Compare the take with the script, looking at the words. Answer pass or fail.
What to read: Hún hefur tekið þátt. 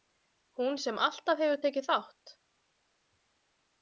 fail